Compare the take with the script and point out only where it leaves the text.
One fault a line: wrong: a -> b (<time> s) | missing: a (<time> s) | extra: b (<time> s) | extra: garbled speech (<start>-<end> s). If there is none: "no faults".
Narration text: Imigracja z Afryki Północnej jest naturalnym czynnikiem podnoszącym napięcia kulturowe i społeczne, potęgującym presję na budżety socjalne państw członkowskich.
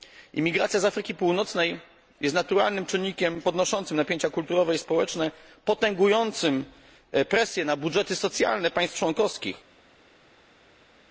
no faults